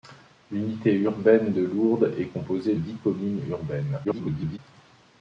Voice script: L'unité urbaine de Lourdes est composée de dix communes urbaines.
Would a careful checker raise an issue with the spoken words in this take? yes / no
yes